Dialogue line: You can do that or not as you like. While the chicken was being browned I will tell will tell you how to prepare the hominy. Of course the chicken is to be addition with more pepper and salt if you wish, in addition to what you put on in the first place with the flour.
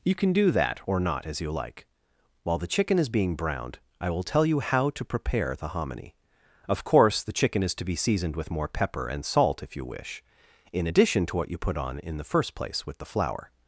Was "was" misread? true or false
true